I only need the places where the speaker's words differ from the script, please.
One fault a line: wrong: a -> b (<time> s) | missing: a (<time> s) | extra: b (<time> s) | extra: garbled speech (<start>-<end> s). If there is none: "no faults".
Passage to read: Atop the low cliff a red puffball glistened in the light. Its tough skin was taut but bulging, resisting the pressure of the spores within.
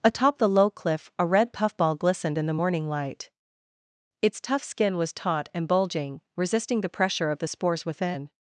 extra: morning (2.6 s)
wrong: but -> and (5.5 s)